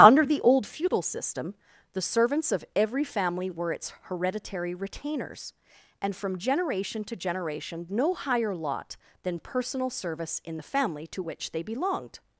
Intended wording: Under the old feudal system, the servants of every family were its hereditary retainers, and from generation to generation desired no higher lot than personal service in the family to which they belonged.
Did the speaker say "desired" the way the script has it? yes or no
no